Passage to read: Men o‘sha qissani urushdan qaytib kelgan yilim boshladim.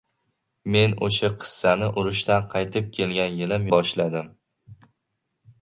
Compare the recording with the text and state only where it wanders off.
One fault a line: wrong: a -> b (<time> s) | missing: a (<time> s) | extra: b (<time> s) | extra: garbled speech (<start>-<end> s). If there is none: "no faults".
no faults